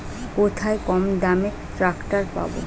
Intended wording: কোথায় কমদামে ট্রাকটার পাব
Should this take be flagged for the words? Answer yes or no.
no